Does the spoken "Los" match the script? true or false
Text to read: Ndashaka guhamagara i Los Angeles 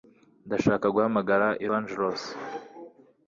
false